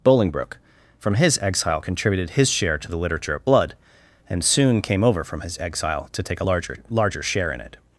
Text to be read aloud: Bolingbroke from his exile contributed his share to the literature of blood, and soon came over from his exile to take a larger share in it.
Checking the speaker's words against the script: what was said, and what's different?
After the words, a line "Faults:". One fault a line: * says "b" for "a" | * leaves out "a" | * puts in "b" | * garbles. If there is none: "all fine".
Bolingbroke from his exile contributed his share to the literature of blood, and soon came over from his exile to take a larger larger share in it.
Faults:
* puts in "larger"